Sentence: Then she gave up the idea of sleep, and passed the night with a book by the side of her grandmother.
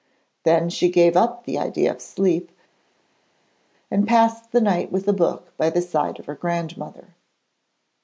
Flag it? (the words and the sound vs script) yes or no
no